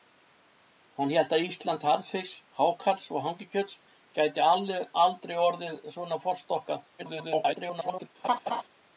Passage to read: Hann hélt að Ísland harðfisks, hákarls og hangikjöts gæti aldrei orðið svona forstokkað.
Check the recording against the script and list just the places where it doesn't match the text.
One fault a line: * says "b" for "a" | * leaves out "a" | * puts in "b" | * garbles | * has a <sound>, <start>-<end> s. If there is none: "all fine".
* garbles
* has a laugh, 8.2-8.6 s